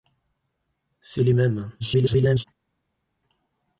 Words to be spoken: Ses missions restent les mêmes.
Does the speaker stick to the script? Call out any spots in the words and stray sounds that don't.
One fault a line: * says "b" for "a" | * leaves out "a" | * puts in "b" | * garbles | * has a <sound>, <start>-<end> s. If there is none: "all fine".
* leaves out "missions restent"
* garbles